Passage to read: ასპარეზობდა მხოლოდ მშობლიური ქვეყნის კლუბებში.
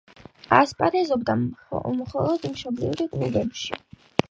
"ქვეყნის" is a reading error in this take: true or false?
true